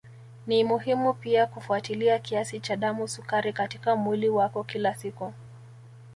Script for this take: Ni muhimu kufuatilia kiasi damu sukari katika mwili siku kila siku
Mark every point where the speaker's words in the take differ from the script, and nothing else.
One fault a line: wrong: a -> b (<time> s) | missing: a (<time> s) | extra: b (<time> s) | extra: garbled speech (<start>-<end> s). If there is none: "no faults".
extra: pia (1.1 s)
extra: cha (2.6 s)
wrong: siku -> wako (4.3 s)